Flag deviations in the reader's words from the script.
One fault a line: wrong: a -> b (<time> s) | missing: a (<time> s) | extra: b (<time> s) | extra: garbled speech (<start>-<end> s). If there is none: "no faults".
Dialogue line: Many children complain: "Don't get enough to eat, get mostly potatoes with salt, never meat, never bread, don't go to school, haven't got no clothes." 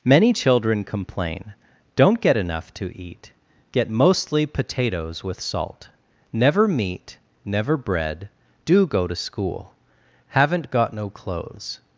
wrong: don't -> do (8.7 s)